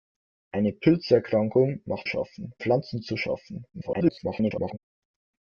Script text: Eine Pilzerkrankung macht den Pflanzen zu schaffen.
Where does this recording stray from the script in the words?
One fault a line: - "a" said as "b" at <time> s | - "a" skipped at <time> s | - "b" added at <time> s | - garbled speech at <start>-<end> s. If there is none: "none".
- "den" said as "schaffen" at 2.0 s
- garbled speech at 3.7-4.8 s